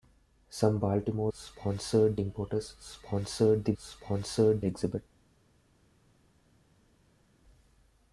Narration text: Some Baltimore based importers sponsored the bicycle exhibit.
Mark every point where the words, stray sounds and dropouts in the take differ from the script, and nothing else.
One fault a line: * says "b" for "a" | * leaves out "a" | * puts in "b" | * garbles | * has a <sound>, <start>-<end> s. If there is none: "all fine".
* says "sponsored" for "based"
* says "sponsored" for "bicycle"